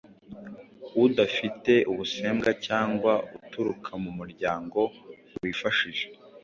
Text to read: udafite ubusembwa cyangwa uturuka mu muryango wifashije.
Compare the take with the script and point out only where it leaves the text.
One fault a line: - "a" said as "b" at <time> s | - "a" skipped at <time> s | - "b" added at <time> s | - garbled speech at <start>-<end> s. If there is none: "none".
none